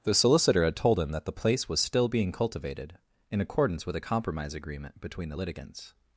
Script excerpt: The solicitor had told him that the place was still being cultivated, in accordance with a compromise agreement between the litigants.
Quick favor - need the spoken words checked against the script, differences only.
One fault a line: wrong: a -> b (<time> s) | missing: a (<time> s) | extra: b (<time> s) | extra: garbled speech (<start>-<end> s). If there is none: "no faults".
no faults